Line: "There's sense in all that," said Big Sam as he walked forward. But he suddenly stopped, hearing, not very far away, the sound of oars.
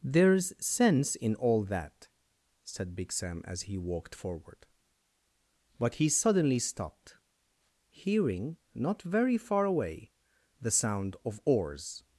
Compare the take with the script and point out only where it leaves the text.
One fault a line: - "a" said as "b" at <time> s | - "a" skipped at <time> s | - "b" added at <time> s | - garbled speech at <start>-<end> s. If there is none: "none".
none